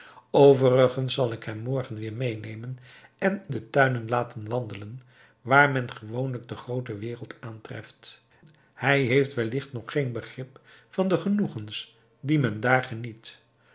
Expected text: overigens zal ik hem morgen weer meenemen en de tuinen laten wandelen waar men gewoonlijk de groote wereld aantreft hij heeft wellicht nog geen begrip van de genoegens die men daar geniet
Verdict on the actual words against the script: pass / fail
pass